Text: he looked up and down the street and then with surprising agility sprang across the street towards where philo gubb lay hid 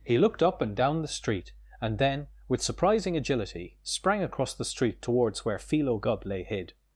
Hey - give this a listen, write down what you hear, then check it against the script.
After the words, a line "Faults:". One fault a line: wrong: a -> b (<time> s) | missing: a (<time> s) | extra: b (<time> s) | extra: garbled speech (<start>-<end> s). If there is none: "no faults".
he looked up and down the street and then with surprising agility sprang across the street towards where philo gubb lay hid
Faults:
no faults